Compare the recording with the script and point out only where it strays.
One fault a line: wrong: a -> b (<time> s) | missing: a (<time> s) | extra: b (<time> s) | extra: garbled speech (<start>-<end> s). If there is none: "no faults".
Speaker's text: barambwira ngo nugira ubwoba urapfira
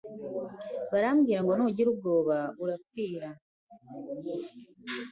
no faults